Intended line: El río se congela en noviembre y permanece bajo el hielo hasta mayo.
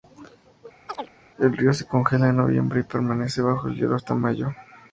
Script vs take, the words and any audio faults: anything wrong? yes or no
yes